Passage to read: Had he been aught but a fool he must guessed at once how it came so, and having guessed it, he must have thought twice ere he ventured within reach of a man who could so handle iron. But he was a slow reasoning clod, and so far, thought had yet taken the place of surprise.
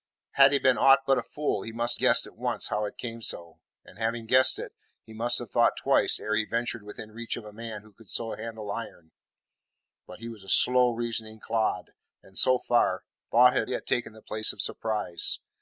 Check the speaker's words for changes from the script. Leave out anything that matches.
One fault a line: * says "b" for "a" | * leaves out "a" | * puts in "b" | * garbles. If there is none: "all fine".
all fine